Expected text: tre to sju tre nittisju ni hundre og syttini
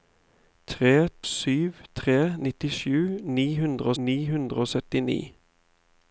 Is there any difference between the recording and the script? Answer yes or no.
yes